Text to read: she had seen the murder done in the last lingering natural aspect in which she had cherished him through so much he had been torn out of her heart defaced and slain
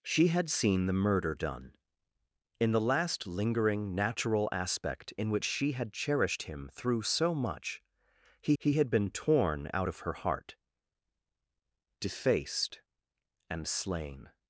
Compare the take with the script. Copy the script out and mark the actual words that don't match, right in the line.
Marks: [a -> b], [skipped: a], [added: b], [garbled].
she had seen the murder done in the last lingering natural aspect in which she had cherished him through so much he [added: he] had been torn out of her heart defaced and slain